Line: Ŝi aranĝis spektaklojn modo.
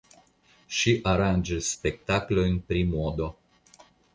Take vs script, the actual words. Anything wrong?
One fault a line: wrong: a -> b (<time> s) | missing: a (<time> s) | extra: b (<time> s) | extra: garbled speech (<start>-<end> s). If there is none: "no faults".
extra: pri (2.7 s)